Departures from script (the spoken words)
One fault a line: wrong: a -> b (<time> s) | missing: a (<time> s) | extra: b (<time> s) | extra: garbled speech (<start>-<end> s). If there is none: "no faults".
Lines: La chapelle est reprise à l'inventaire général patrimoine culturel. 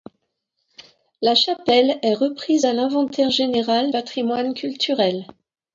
no faults